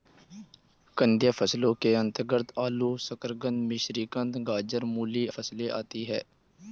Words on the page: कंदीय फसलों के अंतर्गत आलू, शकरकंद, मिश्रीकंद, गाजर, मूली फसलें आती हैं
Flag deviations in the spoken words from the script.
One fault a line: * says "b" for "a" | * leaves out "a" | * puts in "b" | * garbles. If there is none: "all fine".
all fine